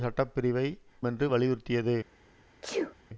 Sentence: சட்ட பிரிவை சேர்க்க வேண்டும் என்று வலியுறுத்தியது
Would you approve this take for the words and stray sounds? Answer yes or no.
no